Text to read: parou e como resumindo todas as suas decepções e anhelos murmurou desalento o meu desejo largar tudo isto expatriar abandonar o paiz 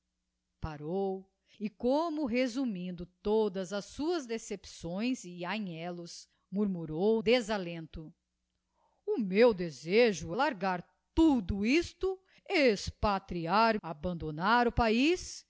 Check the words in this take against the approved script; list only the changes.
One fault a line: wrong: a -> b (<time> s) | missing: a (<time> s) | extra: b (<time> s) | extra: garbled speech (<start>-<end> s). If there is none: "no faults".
no faults